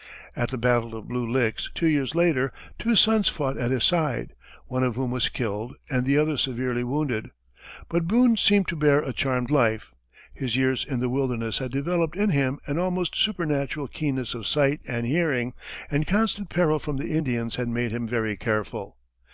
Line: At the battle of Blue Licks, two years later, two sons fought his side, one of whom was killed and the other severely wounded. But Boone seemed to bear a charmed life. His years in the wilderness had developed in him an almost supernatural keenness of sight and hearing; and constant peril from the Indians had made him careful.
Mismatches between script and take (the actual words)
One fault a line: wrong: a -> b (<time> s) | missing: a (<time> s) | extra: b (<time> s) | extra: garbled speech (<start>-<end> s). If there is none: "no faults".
extra: at (3.6 s)
extra: very (18.1 s)